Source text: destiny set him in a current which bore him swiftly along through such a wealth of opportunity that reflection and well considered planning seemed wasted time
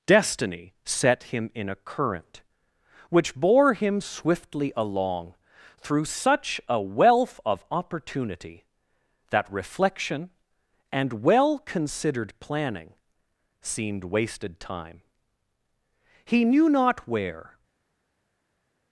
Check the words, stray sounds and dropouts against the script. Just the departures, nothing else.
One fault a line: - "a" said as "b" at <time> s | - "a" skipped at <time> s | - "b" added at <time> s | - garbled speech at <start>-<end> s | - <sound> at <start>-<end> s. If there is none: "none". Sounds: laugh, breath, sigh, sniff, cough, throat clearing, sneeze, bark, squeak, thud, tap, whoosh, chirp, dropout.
- "he knew not where" added at 16.3 s